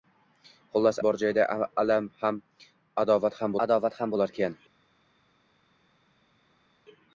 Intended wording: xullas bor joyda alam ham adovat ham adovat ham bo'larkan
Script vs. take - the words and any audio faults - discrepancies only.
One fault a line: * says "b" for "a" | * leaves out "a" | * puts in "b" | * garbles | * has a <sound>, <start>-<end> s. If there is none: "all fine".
all fine